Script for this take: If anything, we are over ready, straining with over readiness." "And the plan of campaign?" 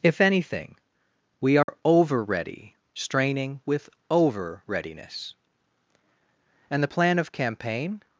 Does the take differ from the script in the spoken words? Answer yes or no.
no